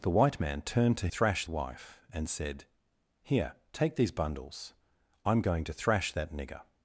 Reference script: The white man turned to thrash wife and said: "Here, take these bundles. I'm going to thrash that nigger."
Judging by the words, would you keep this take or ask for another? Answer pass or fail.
pass